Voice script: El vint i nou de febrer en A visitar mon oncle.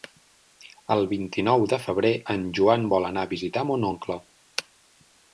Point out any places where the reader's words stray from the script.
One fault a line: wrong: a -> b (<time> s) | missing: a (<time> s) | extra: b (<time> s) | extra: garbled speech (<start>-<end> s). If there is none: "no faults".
extra: Joan vol anar (2.6 s)